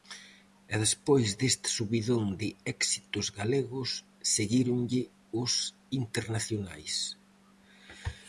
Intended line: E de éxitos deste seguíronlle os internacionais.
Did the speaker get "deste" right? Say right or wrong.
wrong